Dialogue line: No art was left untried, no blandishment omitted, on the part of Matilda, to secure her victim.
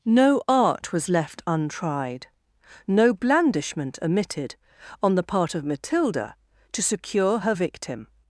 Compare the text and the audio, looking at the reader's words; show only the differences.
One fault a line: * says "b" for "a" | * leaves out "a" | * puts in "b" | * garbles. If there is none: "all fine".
all fine